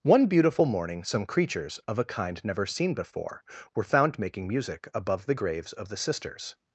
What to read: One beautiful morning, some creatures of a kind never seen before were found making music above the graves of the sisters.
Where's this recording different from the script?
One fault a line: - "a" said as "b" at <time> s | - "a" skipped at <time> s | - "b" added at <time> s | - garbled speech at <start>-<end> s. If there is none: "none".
none